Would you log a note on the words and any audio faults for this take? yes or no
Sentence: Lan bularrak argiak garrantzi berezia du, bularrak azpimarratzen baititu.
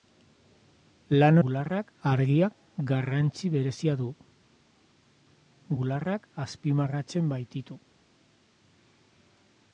no